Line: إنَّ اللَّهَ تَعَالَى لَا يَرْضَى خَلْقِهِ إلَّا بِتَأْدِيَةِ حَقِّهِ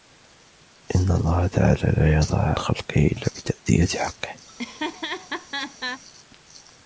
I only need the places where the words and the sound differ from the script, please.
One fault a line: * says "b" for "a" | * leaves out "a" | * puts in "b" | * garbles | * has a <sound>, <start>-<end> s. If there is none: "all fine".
* has a laugh, 4.5-6.0 s